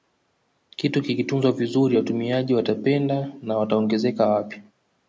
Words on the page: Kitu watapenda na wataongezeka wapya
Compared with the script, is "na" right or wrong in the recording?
right